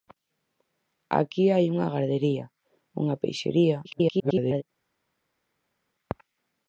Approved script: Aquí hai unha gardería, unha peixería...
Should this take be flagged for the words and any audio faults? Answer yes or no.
yes